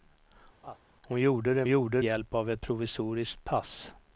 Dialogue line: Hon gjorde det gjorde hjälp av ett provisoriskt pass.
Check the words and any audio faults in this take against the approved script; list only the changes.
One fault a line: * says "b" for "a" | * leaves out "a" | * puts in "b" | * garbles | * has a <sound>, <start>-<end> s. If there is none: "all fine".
* has a laugh, 0.6-0.8 s